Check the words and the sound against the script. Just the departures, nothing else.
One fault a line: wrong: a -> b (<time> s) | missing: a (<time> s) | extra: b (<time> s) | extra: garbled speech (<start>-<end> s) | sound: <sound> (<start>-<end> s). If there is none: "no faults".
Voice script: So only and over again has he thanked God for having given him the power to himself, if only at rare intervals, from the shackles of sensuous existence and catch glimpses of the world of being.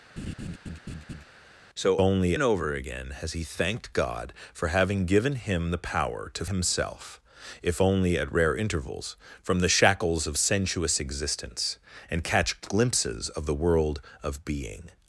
sound: laugh (0.2-1.2 s)